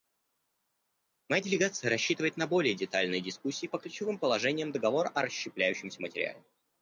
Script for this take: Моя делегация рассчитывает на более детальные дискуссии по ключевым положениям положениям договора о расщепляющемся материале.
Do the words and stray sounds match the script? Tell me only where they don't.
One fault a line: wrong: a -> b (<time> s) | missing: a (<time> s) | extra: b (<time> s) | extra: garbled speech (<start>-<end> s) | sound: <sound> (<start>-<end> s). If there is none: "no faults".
missing: положениям (4.7 s)